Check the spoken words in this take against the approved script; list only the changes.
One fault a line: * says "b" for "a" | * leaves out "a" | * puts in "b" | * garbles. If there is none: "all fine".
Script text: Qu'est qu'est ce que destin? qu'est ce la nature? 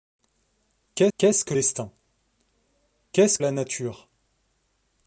all fine